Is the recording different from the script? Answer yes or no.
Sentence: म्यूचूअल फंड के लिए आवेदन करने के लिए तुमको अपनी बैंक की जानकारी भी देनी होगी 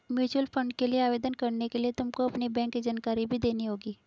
no